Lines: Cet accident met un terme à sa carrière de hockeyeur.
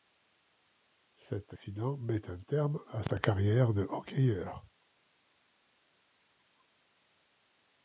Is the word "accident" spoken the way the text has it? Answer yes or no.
yes